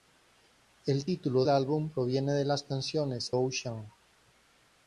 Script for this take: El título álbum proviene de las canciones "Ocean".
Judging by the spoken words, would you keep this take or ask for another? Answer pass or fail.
pass